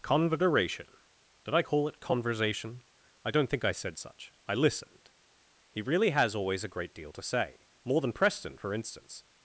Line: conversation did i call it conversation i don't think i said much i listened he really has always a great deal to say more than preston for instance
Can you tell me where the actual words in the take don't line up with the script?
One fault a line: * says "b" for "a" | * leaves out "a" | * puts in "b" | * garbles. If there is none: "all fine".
* says "such" for "much"